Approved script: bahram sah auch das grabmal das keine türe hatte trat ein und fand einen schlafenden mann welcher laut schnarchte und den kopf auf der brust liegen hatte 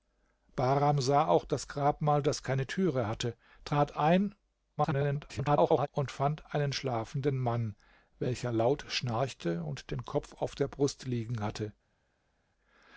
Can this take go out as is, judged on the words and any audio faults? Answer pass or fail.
fail